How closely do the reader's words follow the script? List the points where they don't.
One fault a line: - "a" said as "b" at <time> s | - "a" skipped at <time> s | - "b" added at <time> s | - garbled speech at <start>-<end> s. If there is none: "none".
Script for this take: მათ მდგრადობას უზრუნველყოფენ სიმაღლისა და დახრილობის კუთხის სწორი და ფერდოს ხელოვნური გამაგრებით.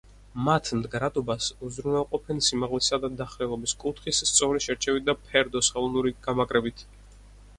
- "შერჩევით" added at 4.7 s